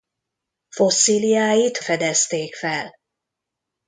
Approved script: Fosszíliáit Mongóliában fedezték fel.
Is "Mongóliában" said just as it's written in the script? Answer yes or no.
no